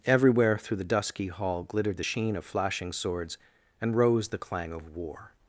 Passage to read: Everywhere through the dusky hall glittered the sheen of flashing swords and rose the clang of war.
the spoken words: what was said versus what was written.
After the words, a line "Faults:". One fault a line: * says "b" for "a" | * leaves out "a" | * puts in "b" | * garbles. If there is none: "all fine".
Everywhere through the dusky hall glittered the sheen of flashing swords and rose the clang of war.
Faults:
all fine